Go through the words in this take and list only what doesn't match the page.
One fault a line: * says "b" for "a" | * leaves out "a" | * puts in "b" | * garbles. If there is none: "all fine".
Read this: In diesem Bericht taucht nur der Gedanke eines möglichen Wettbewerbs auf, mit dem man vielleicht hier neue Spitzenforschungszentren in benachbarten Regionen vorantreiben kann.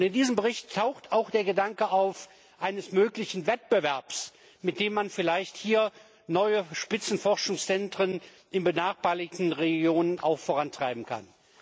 * says "auch" for "nur"